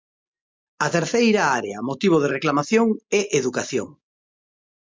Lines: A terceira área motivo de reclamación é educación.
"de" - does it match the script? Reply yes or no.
yes